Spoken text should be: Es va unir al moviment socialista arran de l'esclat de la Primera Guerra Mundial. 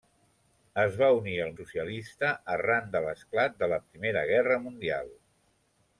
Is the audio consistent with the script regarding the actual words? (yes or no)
no